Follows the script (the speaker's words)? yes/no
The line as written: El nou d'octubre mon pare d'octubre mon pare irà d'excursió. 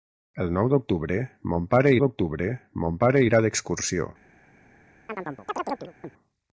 yes